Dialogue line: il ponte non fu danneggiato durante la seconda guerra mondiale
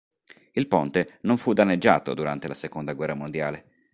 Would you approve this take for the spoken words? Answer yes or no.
yes